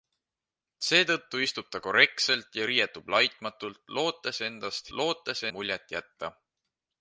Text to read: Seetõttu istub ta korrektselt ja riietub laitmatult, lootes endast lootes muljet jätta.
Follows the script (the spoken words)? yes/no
yes